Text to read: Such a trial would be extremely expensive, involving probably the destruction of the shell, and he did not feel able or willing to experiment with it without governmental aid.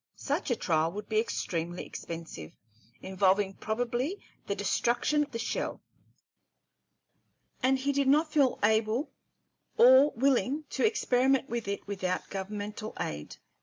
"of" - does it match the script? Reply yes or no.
no